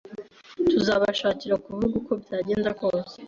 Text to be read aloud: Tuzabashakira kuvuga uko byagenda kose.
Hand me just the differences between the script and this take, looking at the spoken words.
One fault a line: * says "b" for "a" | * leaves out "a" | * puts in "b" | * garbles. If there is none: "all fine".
all fine